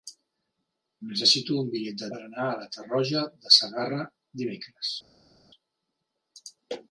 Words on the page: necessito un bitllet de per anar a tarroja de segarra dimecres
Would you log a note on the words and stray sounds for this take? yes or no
no